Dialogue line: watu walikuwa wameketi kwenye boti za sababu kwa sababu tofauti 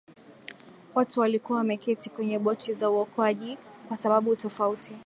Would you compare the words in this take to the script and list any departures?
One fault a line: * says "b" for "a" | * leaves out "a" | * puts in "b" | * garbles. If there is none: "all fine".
* says "uokoaji" for "sababu"